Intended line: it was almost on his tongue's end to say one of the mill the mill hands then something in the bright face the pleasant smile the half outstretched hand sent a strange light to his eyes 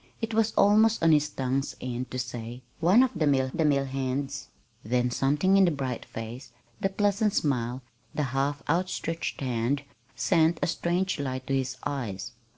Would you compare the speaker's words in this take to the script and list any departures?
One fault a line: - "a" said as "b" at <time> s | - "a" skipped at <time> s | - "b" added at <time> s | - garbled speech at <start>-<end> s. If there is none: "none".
none